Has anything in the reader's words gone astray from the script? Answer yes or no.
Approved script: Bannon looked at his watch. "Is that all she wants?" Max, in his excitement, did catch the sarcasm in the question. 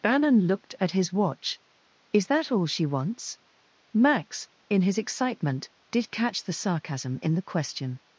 no